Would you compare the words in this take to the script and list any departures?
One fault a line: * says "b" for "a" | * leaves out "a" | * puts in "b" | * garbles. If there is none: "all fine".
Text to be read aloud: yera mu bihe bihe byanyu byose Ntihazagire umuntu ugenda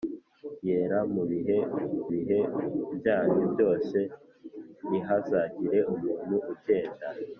all fine